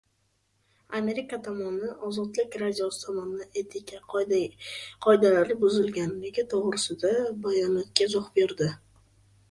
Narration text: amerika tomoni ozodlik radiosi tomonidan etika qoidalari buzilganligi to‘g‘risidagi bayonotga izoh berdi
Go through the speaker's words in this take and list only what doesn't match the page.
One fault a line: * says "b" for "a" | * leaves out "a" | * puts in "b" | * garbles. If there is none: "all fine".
all fine